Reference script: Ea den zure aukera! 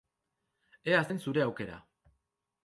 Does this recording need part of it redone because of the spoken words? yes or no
no